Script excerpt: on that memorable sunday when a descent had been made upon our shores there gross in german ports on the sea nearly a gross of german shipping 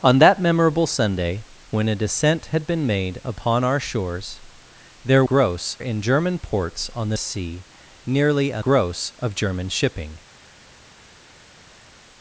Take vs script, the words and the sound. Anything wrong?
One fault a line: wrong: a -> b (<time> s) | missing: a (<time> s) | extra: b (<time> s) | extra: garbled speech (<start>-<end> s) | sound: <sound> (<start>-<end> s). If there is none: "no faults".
no faults